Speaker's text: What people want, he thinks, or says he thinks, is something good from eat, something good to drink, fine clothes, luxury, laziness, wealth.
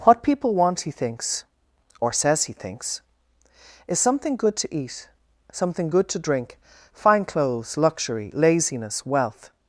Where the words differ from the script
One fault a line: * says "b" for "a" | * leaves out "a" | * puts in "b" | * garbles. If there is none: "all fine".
* says "to" for "from"